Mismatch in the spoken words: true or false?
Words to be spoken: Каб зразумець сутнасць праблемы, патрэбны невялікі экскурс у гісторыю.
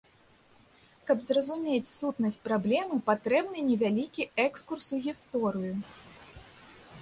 false